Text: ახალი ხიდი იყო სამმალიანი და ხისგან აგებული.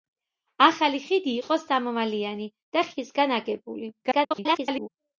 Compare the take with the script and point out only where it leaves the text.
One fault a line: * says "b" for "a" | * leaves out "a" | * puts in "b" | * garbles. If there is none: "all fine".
* garbles